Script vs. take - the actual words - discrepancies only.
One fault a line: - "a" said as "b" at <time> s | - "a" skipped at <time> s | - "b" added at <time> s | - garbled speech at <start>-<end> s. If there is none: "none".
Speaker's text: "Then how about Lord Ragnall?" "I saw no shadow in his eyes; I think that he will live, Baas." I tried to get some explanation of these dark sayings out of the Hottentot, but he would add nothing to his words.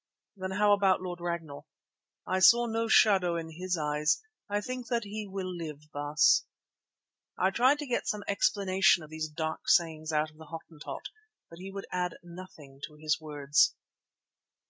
none